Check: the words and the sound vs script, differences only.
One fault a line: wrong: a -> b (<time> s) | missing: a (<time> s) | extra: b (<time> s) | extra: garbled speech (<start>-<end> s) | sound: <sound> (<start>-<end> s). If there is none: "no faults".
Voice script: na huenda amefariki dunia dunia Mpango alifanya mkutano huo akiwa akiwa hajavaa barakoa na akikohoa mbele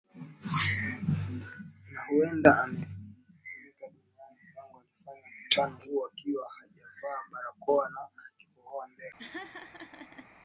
missing: dunia (3.9 s)
missing: akiwa (6.4 s)
sound: laugh (9.2-10.3 s)